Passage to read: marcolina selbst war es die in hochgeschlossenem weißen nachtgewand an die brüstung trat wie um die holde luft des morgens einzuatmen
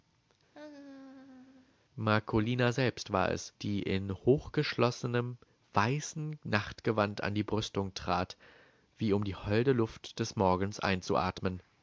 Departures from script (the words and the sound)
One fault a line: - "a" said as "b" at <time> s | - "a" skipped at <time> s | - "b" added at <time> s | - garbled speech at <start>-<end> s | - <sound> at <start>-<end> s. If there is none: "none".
- laugh at 0.5-1.8 s